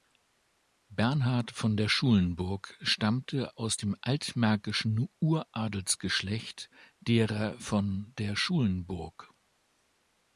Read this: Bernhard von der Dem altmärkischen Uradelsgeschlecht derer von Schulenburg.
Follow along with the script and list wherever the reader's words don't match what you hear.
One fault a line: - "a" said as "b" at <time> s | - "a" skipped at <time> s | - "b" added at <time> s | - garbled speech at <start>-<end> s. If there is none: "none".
- "Schulenburg stammte aus" added at 1.9 s
- "der" added at 8.2 s